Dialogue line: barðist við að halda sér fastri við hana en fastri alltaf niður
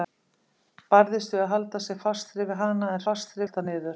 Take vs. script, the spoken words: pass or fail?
pass